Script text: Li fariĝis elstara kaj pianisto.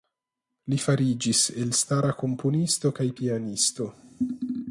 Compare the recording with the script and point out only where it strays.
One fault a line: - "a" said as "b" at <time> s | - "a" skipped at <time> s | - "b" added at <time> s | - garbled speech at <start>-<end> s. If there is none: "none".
- "komponisto" added at 2.2 s